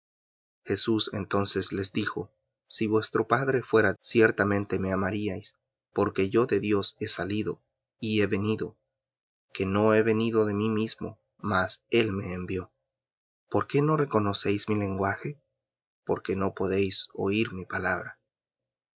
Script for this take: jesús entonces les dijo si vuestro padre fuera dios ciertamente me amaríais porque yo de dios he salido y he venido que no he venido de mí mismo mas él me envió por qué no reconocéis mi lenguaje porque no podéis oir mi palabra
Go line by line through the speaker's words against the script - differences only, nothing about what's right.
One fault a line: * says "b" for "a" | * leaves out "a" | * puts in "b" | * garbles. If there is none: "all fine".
* leaves out "dios"